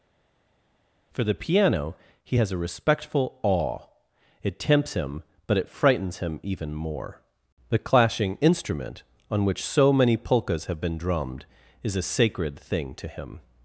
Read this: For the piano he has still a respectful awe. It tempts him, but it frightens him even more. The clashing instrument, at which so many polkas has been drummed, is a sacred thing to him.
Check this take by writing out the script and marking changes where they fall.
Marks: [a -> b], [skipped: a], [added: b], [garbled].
For the piano he has [skipped: still] a respectful awe. It tempts him, but it frightens him even more. The clashing instrument, [at -> on] which so many polkas [has -> have] been drummed, is a sacred thing to him.